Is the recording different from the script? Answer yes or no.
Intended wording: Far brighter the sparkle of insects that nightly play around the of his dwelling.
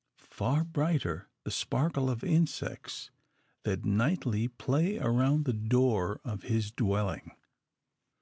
yes